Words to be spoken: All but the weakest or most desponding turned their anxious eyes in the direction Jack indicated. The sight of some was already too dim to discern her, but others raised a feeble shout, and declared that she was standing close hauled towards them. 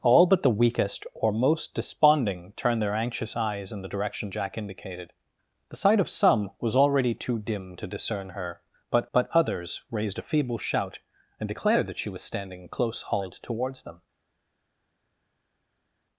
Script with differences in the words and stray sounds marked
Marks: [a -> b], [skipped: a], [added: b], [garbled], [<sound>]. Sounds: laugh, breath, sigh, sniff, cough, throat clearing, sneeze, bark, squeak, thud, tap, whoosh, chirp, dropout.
All but the weakest or most desponding turned their anxious eyes in the direction Jack indicated. The sight of some was already too dim to discern her, but [added: but] others raised a feeble shout, and declared that she was standing close hauled towards them.